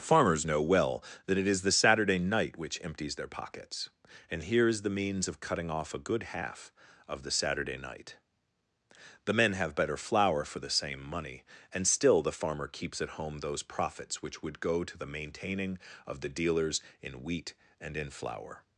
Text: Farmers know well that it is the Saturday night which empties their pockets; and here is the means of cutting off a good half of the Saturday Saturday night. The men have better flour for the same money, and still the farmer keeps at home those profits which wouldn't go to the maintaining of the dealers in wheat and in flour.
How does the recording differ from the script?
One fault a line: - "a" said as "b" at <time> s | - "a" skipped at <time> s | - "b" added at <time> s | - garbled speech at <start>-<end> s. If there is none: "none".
- "Saturday" skipped at 7.7 s
- "wouldn't" said as "would" at 14.4 s